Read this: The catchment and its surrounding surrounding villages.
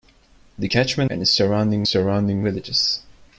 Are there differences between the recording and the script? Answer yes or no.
no